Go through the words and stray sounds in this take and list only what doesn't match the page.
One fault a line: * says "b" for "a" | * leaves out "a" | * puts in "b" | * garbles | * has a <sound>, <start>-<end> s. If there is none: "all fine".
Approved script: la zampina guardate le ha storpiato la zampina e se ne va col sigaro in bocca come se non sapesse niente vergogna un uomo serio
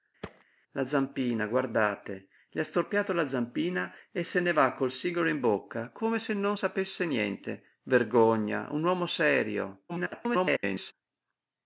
* has a thud, 0.2-0.4 s
* garbles